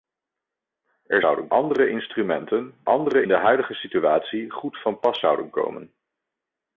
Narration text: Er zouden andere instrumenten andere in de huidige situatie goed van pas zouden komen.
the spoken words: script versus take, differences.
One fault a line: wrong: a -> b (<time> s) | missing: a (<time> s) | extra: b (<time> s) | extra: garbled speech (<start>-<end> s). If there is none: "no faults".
no faults